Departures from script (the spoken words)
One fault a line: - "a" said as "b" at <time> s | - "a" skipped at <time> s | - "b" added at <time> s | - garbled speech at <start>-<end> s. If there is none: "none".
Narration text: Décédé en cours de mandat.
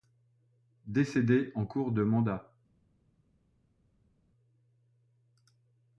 none